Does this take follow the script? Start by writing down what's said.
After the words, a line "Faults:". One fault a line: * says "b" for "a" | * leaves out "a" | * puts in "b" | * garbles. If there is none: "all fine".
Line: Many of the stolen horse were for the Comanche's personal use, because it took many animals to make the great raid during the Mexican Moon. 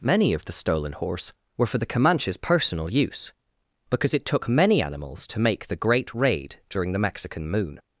Many of the stolen horse were for the Comanche's personal use, because it took many animals to make the great raid during the Mexican Moon.
Faults:
all fine